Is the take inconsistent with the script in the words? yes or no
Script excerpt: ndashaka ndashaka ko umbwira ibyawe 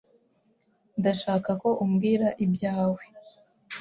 yes